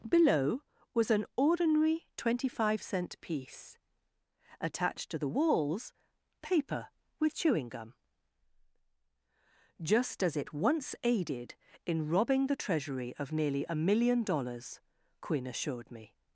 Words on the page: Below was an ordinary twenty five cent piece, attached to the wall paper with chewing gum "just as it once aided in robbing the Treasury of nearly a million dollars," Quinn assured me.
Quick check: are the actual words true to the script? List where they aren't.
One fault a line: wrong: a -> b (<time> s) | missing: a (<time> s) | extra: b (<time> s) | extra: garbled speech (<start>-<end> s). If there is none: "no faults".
wrong: wall -> walls (5.3 s)